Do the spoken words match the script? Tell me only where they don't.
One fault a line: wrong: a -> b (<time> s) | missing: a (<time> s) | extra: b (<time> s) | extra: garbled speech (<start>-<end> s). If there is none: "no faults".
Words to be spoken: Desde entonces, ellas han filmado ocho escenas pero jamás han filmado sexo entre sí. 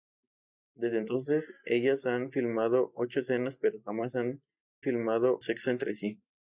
no faults